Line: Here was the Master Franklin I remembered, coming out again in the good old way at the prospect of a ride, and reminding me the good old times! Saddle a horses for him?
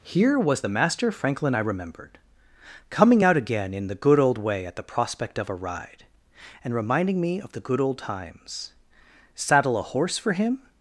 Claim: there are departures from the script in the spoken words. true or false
true